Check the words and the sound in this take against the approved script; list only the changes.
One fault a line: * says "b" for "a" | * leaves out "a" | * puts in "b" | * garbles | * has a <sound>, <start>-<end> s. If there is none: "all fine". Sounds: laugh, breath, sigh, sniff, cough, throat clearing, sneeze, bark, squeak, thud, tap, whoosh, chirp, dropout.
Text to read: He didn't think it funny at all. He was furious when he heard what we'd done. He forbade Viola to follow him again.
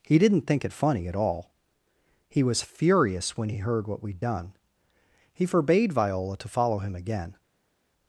all fine